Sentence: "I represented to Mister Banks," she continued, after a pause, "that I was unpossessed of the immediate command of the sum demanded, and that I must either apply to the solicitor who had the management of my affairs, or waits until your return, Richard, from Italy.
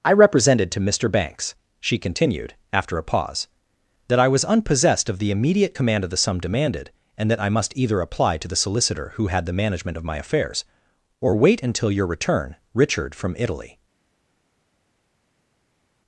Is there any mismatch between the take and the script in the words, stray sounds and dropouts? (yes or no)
yes